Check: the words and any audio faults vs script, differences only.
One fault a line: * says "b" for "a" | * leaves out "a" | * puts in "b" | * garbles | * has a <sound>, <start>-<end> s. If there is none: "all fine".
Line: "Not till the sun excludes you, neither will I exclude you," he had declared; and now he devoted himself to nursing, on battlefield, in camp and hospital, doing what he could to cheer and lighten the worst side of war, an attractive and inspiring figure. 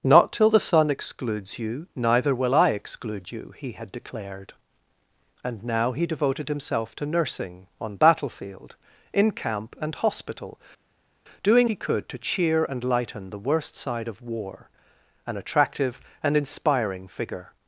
* leaves out "what"